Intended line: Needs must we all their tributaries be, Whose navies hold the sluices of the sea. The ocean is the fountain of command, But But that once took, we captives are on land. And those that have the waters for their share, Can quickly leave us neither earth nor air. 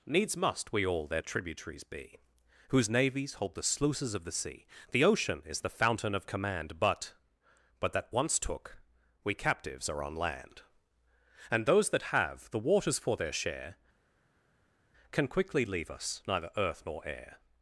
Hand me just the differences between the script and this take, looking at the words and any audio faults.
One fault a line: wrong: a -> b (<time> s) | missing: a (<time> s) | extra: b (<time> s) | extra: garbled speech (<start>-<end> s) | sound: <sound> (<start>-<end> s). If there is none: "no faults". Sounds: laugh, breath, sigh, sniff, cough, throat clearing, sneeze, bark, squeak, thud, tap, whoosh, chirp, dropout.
no faults